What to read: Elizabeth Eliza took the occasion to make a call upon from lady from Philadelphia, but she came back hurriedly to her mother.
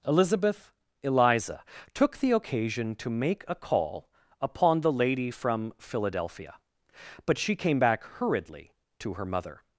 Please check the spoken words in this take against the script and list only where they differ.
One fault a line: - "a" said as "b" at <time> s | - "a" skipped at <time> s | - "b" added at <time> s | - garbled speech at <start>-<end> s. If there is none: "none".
- "from" said as "the" at 4.8 s